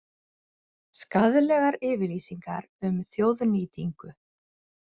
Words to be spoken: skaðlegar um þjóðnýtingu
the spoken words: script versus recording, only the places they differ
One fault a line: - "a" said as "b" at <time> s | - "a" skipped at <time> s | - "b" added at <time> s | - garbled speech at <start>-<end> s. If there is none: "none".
- "yfirlýsingar" added at 1.9 s